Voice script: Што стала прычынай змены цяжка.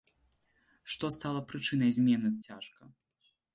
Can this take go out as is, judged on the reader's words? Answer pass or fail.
pass